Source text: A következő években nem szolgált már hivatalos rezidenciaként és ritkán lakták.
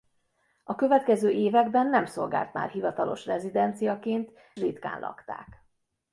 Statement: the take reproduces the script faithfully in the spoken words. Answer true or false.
false